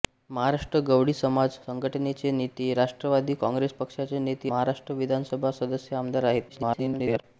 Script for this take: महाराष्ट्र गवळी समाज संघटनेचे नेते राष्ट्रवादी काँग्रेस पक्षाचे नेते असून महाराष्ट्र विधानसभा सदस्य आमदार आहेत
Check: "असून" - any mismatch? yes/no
yes